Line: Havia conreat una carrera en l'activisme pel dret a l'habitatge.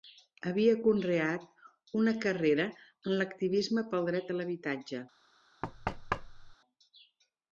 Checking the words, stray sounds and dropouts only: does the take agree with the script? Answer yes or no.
no